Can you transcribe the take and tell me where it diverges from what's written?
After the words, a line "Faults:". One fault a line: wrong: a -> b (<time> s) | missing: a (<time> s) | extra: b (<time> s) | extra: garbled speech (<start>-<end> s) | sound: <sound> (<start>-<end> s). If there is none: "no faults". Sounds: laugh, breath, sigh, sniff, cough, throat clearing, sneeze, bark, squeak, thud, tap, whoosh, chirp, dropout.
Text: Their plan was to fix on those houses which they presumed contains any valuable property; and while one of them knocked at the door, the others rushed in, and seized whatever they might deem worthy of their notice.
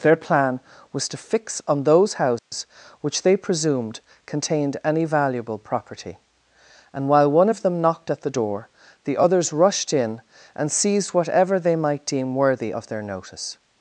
Their plan was to fix on those houses which they presumed contained any valuable property; and while one of them knocked at the door, the others rushed in, and seized whatever they might deem worthy of their notice.
Faults:
sound: dropout (2.4-2.5 s)
wrong: contains -> contained (4.2 s)